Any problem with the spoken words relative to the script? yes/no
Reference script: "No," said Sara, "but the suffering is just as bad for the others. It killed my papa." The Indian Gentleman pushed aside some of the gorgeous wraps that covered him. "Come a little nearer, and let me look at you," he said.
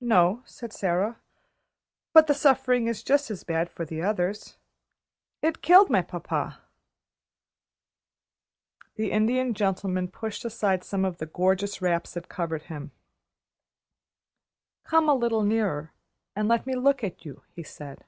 no